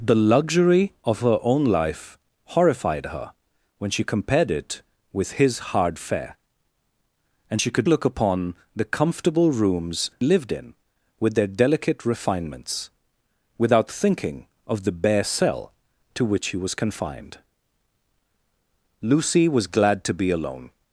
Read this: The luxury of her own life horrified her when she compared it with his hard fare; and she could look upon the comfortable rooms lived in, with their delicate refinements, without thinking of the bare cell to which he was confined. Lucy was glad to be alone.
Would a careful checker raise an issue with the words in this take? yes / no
no